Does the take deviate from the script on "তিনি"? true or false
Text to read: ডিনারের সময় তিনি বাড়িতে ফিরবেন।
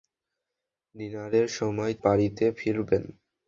true